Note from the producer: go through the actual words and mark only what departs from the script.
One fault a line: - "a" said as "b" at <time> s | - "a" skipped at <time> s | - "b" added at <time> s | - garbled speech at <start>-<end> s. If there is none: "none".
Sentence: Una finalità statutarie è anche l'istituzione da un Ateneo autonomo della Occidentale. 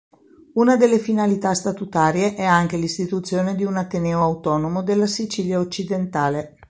- "delle" added at 0.8 s
- "da" said as "di" at 3.5 s
- "Sicilia" added at 5.1 s